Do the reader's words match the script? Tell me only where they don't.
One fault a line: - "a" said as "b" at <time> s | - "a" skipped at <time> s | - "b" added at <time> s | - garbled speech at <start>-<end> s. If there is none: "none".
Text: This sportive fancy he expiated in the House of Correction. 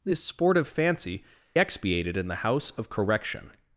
- "he" skipped at 1.2 s